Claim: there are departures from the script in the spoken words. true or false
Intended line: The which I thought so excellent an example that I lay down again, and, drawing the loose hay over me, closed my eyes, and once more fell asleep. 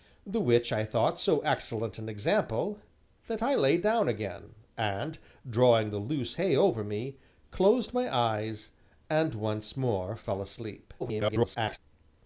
true